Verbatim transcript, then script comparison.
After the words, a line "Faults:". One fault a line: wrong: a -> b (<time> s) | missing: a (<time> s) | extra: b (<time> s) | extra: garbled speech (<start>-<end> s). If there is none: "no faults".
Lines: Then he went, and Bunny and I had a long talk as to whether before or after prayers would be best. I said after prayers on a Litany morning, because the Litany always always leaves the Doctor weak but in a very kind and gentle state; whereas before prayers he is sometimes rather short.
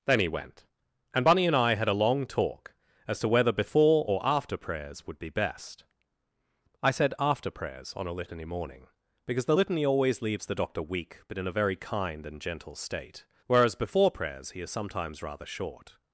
Then he went, and Bunny and I had a long talk as to whether before or after prayers would be best. I said after prayers on a Litany morning, because the Litany always leaves the Doctor weak but in a very kind and gentle state; whereas before prayers he is sometimes rather short.
Faults:
missing: always (10.2 s)